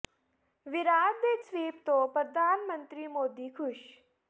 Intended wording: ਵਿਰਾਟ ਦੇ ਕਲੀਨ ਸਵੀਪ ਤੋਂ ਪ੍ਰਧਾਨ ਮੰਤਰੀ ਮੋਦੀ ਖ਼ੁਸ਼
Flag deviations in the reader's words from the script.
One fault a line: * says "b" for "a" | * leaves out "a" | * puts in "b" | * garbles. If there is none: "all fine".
* leaves out "ਕਲੀਨ"